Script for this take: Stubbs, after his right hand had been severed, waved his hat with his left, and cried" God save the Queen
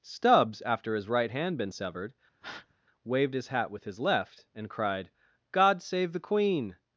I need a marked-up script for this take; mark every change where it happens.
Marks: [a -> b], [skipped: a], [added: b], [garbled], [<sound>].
Stubbs, after his right hand [skipped: had] been severed, [breath] waved his hat with his left, and cried" God save the Queen